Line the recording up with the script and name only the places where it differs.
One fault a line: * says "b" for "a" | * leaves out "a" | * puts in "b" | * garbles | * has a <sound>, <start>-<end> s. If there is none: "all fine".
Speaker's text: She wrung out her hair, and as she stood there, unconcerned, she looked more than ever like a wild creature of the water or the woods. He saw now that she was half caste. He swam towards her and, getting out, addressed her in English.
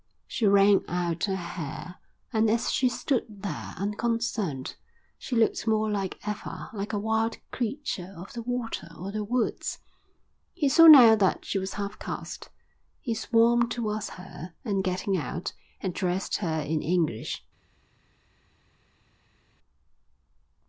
all fine